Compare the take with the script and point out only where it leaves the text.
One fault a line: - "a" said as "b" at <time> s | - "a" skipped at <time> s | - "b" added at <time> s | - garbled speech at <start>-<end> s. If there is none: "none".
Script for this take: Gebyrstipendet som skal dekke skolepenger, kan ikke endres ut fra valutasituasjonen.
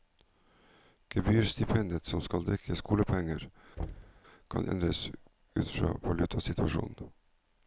- "ikke" skipped at 4.7 s